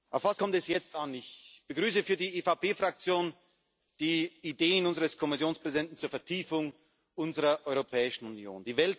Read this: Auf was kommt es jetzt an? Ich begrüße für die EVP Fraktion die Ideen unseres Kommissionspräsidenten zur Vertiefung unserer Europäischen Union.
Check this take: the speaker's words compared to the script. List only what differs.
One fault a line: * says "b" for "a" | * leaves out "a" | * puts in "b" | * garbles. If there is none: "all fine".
all fine